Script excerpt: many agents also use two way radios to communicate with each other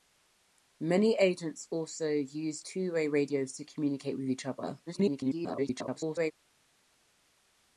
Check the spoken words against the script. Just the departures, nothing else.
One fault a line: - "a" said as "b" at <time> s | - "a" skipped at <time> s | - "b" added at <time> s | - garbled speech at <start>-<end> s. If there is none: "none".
- garbled speech at 4.9-6.3 s